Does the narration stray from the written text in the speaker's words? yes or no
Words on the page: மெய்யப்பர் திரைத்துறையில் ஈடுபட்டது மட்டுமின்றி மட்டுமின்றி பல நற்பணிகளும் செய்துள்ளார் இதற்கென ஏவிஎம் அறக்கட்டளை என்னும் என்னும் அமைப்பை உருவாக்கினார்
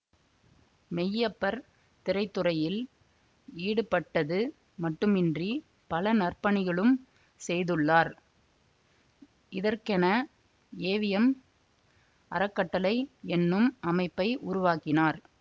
yes